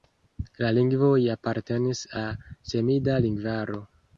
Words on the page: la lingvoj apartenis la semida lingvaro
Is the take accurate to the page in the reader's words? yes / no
yes